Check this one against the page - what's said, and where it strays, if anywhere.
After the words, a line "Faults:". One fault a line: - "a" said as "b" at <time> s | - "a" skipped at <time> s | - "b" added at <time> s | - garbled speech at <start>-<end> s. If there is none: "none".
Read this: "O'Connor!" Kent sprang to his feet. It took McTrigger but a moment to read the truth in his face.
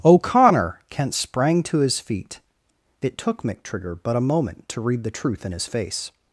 "O'Connor!" Kent sprang to his feet. It took McTrigger but a moment to read the truth in his face.
Faults:
none